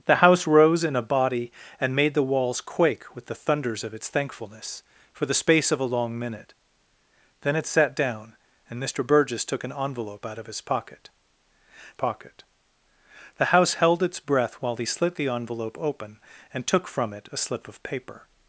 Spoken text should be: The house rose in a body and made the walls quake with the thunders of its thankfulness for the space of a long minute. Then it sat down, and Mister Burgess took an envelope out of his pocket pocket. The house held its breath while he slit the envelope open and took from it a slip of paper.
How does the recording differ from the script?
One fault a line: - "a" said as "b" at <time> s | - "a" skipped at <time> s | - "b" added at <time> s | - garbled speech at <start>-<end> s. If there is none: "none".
none